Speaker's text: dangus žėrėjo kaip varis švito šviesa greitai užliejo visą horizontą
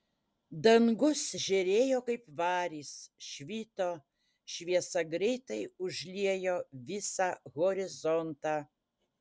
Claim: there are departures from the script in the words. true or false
false